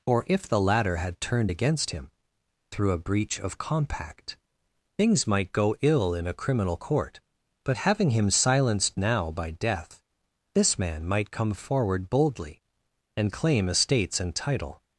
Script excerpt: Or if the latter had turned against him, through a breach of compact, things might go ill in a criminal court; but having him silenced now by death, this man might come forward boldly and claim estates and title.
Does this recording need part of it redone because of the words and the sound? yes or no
no